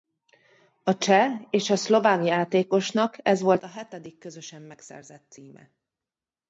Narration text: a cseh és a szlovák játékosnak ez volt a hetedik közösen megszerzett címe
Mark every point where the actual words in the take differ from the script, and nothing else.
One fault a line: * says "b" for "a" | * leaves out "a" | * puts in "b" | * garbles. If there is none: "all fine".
all fine